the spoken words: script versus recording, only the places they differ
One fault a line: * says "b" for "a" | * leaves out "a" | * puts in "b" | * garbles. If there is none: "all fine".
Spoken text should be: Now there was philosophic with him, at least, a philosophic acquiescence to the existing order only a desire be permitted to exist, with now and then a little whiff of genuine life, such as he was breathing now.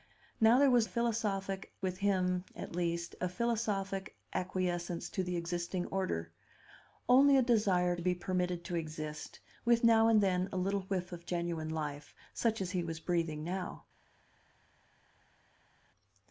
all fine